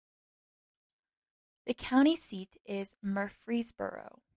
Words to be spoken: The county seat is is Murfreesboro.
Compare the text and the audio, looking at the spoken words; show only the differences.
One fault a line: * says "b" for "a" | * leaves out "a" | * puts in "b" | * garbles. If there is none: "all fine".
* leaves out "is"